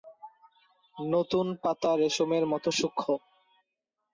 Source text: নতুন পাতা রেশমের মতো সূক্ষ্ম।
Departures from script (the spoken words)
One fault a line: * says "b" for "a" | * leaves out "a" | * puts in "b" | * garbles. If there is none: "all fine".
all fine